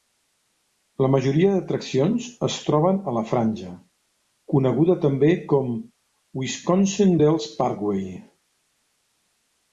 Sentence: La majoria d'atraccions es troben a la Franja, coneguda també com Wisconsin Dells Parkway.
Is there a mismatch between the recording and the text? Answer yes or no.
no